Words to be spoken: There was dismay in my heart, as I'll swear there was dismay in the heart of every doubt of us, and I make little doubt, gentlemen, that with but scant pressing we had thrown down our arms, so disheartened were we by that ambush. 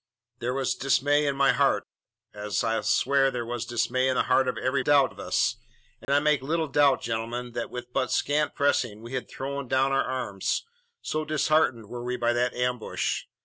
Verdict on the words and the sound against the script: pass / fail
fail